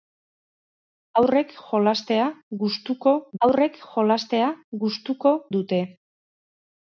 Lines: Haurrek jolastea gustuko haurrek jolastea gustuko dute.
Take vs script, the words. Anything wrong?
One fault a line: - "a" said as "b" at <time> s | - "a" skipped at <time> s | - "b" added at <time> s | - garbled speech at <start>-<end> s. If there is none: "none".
none